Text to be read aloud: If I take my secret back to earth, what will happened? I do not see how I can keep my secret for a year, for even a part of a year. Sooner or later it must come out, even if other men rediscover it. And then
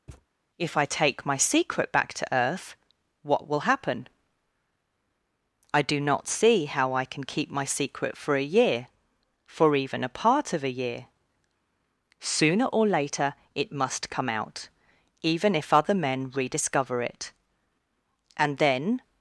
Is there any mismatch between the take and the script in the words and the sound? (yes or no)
yes